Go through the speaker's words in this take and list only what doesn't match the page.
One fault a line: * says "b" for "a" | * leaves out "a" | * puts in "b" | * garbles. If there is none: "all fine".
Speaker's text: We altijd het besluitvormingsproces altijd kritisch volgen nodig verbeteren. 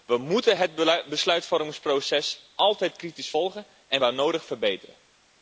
* says "moeten" for "altijd"
* puts in "en waar"